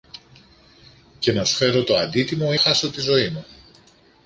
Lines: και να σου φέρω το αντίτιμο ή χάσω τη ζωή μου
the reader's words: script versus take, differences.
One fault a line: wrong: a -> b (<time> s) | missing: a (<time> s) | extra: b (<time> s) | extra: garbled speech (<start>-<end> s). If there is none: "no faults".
no faults